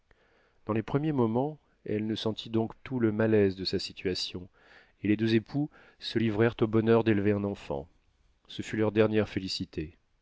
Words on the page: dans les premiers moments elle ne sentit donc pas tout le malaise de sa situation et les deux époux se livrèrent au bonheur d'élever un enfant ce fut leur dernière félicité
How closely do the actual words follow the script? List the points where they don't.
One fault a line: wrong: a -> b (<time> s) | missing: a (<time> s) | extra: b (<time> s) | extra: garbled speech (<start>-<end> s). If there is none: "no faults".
missing: pas (2.7 s)